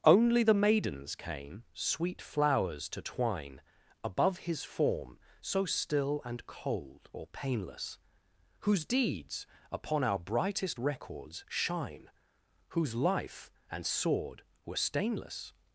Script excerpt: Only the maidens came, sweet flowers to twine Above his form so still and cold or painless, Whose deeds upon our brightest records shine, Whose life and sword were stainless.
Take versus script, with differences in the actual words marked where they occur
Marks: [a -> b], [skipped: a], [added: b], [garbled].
Only the maidens came, sweet flowers to twine Above his form so still and cold or painless, Whose deeds upon our brightest records shine, Whose life and sword were stainless.